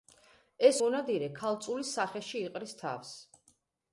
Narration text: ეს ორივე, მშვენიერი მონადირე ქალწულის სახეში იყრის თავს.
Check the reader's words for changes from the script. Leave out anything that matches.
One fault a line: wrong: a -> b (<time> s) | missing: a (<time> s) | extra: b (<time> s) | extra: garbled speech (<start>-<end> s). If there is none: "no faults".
missing: ორივე მშვენიერი (0.8 s)